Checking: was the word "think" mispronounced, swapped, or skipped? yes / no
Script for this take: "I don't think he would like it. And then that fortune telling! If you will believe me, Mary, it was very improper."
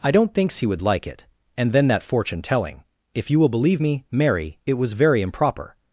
yes